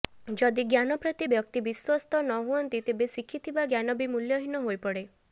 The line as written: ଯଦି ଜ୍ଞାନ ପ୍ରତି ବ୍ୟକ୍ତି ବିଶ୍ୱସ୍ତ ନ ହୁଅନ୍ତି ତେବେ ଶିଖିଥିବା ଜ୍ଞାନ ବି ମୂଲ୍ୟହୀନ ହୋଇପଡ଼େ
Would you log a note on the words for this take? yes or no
no